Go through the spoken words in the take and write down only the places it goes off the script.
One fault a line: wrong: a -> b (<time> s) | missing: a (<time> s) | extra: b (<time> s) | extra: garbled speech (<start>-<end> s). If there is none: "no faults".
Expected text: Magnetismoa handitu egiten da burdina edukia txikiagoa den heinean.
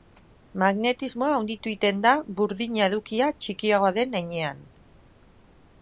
no faults